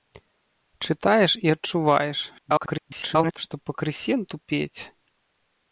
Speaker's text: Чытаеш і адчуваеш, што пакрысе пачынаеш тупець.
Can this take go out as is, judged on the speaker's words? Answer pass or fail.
fail